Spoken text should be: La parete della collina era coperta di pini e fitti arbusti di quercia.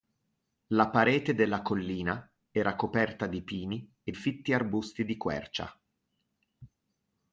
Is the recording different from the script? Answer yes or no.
no